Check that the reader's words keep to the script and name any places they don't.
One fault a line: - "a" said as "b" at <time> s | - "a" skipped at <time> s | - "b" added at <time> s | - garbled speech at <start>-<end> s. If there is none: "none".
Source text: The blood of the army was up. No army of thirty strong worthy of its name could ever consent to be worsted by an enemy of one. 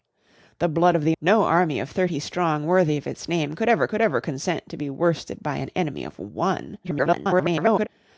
- "army was up" skipped at 1.1 s
- "could ever" added at 3.9 s
- garbled speech at 6.8-7.9 s